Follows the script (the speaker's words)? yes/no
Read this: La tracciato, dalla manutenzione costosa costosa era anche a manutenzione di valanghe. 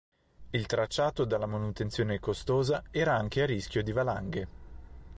no